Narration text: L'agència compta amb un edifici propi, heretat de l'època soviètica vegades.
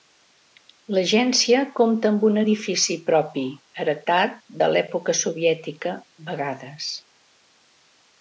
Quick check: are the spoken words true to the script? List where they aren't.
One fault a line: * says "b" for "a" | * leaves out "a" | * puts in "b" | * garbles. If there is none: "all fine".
all fine